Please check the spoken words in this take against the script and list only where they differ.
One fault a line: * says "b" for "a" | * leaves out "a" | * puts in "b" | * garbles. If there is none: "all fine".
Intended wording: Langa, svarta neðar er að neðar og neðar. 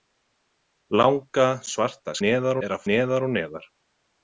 all fine